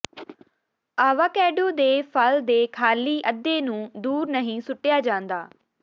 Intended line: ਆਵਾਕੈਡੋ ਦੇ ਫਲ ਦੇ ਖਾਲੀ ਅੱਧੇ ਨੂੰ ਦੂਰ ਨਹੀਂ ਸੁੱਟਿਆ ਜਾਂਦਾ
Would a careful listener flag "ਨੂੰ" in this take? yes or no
no